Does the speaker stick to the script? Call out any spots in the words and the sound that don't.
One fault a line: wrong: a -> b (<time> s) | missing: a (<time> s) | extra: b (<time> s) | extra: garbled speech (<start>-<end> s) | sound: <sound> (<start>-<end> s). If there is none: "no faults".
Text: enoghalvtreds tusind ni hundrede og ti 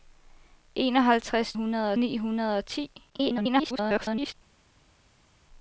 wrong: tusind -> hundrede (1.5 s)
extra: garbled speech (3.1-4.3 s)